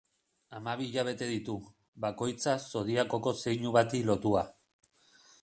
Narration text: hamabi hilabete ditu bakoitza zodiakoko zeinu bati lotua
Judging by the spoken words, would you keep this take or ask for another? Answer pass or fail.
pass